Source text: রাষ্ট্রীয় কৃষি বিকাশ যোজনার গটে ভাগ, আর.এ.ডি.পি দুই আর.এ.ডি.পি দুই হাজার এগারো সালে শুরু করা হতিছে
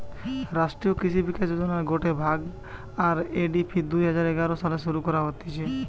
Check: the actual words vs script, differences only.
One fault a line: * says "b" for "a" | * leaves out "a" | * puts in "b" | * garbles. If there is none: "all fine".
* leaves out "আর.এ.ডি.পি দুই"